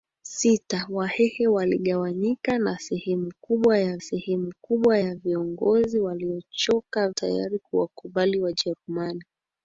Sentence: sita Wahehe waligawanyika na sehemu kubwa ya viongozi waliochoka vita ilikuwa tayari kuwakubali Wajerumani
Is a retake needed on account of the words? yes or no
yes